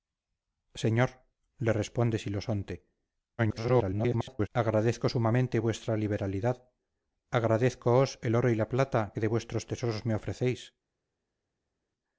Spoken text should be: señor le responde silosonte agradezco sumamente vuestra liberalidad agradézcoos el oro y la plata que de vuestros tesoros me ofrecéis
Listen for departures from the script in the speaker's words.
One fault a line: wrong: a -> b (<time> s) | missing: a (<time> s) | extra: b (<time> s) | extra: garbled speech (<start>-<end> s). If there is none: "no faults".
extra: garbled speech (3.4-4.5 s)